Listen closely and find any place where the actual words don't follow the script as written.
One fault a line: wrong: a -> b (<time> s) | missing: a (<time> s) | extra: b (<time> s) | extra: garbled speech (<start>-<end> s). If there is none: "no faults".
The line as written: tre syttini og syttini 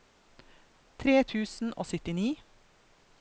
wrong: syttini -> tusen (1.3 s)